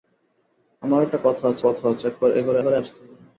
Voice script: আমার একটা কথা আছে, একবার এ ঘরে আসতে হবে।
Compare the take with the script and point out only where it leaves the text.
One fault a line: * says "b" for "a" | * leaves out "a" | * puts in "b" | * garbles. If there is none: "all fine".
* puts in "কথা আছে"
* puts in "ঘরে"